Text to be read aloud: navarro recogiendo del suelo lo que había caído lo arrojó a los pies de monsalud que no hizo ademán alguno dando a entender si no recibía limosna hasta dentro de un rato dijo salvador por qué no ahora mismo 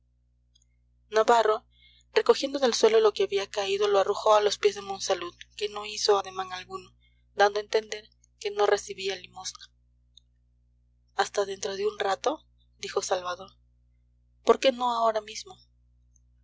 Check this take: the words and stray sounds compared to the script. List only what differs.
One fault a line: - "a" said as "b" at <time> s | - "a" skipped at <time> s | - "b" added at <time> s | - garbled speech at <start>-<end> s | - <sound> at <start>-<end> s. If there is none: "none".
- "si" said as "que" at 8.4 s